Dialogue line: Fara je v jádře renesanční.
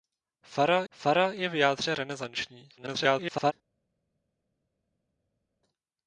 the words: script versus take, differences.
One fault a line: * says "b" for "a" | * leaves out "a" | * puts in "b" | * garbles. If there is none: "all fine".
* puts in "fara"
* garbles